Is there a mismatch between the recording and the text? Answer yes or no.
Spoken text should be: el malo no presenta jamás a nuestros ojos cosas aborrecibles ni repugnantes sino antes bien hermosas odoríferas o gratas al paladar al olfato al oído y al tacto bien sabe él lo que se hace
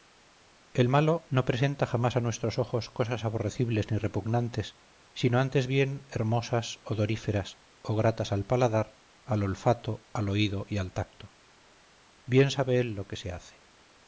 no